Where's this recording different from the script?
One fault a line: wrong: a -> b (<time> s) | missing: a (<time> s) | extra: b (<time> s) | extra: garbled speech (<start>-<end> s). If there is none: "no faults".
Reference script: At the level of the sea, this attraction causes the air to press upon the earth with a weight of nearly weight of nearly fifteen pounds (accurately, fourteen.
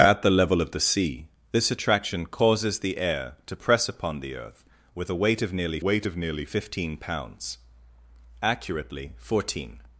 no faults